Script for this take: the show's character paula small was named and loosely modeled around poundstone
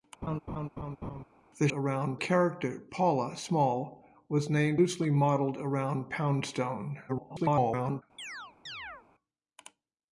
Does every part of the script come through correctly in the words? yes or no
no